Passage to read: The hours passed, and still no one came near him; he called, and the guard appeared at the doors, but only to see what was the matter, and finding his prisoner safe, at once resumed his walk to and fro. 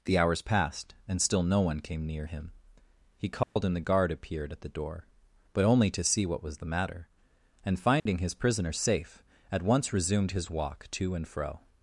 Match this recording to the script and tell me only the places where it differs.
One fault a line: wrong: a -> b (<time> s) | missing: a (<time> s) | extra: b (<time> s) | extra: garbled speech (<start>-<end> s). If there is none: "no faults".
wrong: doors -> door (4.7 s)